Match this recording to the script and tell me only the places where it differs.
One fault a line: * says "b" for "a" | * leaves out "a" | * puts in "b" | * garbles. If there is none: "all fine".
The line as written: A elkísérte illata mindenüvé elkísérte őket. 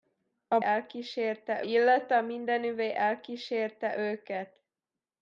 all fine